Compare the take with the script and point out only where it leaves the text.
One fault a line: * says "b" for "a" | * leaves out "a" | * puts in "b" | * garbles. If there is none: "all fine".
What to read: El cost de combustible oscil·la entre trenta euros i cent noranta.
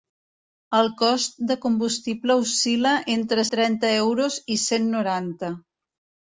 all fine